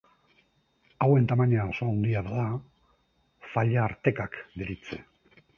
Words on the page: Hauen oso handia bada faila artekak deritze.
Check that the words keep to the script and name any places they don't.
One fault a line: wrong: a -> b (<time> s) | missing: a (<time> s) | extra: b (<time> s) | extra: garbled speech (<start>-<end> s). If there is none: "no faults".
extra: tamaina (1.3 s)